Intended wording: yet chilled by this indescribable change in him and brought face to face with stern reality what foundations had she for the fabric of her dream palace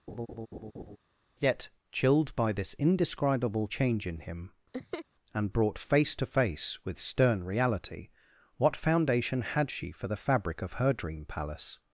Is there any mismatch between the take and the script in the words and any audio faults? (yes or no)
yes